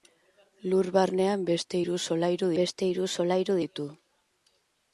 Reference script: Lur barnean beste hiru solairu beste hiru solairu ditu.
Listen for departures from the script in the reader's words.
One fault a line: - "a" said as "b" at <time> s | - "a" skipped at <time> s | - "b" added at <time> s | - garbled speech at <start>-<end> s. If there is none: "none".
none